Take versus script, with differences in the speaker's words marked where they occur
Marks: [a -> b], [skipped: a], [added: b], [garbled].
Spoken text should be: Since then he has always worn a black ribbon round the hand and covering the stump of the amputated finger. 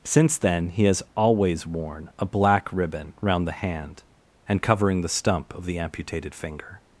Since then he has always worn a black ribbon round the hand and covering the stump of the amputated finger.